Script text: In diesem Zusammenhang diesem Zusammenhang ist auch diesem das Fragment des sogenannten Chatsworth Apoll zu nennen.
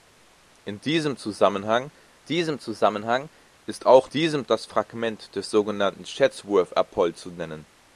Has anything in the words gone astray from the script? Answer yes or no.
no